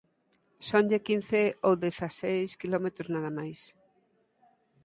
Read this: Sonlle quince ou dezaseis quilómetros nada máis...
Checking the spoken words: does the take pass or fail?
pass